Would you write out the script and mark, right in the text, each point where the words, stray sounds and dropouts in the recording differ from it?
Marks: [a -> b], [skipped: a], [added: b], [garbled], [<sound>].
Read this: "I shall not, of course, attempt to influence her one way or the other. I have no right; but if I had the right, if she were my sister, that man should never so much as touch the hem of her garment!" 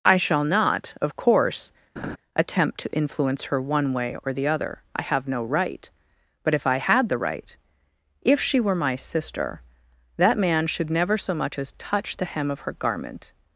"I shall not, of course, [laugh] attempt to influence her one way or the other. I have no right; but if I had the right, if she were my sister, that man should never so much as touch the hem of her garment!"